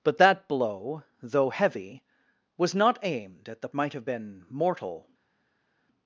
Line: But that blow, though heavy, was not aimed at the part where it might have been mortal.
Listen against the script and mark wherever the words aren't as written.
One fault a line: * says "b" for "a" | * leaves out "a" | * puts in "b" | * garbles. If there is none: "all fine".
* leaves out "part where it"